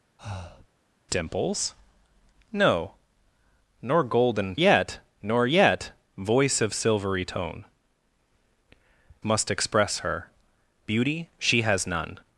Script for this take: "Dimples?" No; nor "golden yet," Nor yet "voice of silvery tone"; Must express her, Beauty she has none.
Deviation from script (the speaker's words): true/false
false